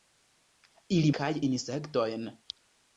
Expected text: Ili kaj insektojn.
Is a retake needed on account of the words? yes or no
no